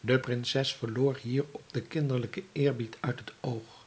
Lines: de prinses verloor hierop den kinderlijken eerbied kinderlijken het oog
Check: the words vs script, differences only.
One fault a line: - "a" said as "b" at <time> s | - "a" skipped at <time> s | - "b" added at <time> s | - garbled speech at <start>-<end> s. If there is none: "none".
- "kinderlijken" said as "uit" at 3.0 s